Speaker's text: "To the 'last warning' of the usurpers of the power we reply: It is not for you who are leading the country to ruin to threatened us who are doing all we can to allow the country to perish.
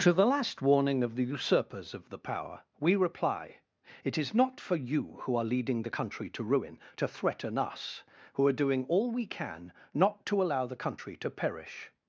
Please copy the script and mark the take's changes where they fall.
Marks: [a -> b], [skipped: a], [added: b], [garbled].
"To the 'last warning' of the usurpers of the power we reply: It is not for you who are leading the country to ruin to [threatened -> threaten] us who are doing all we can [added: not] to allow the country to perish.